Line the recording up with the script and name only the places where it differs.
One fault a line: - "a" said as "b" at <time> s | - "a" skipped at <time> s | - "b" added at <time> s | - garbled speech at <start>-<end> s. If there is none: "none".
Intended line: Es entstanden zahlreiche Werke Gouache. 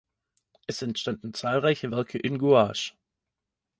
- "in" added at 2.2 s